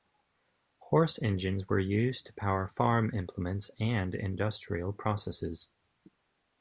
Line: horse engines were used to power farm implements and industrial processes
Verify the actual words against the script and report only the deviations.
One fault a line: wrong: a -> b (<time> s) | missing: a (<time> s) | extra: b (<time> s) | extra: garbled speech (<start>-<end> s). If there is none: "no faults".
no faults